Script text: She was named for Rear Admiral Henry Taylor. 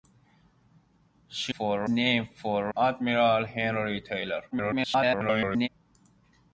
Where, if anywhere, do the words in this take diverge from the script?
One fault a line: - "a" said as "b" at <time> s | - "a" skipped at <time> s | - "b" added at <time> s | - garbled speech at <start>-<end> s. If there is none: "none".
- "was" said as "for" at 1.5 s
- "Rear" skipped at 2.7 s
- garbled speech at 4.5-5.7 s